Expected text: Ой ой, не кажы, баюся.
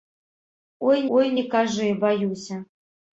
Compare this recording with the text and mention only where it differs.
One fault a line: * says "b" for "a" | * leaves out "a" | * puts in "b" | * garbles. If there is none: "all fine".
all fine